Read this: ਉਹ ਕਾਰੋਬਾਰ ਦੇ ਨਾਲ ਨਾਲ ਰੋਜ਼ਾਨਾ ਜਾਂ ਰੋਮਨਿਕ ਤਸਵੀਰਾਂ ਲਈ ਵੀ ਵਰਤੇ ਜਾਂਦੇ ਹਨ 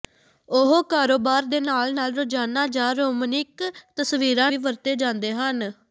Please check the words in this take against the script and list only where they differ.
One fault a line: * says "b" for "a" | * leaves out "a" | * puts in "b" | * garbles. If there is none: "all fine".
* leaves out "ਲਈ"